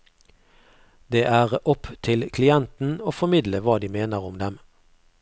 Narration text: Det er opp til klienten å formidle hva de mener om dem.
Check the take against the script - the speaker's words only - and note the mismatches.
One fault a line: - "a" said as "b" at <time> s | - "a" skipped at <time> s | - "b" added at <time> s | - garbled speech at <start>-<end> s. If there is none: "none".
none